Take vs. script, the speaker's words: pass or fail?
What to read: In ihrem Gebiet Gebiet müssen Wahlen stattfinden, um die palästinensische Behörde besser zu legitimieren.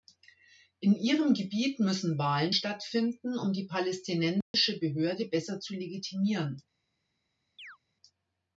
fail